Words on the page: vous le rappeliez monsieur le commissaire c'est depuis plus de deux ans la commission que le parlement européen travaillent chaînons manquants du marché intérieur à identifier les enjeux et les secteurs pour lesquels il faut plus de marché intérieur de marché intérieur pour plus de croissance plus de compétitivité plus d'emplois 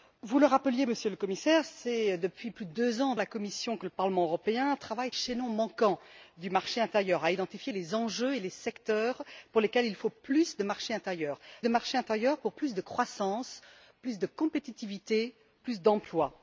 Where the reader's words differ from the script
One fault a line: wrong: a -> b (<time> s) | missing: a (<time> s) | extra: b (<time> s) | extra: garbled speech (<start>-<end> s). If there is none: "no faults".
no faults